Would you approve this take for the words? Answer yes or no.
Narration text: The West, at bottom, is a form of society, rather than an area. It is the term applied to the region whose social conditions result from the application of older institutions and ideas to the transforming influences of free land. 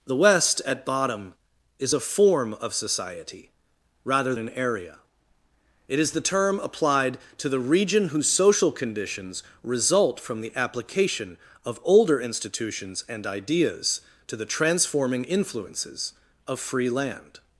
no